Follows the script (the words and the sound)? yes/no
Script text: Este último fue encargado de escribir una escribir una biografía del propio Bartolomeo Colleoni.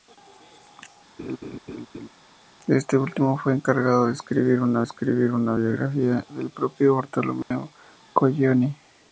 no